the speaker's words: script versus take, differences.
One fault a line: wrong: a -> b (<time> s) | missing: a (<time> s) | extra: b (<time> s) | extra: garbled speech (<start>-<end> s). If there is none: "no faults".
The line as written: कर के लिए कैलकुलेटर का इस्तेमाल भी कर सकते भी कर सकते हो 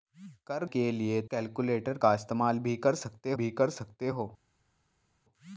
no faults